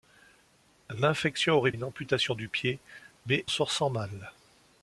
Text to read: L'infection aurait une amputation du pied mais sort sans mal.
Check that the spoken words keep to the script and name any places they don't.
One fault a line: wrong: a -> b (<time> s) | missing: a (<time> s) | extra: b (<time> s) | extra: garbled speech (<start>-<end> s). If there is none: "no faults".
no faults